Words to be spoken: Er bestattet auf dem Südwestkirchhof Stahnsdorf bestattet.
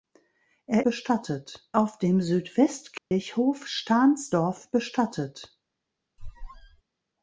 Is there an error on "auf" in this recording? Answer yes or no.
no